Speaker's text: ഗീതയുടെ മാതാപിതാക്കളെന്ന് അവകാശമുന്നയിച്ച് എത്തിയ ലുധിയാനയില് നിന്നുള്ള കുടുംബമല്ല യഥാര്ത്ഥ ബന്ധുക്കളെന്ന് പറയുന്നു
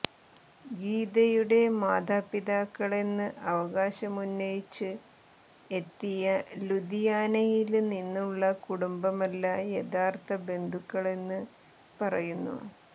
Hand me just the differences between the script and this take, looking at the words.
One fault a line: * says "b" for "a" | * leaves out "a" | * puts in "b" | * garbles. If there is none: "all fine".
all fine